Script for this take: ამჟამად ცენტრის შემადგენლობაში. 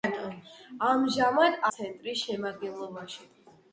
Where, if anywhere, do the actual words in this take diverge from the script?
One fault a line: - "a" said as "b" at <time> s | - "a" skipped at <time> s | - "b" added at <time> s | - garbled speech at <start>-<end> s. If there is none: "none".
none